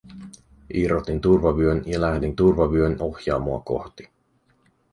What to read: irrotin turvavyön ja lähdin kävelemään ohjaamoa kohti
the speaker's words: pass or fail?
fail